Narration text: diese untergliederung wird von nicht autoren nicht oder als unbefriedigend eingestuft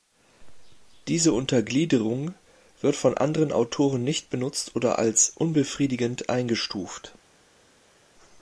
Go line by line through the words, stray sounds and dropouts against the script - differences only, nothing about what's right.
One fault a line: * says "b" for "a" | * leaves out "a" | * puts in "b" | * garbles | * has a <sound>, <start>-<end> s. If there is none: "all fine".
* says "anderen" for "nicht"
* puts in "benutzt"